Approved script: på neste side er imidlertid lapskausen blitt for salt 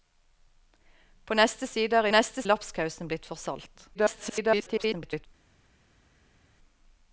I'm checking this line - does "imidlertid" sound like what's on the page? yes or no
no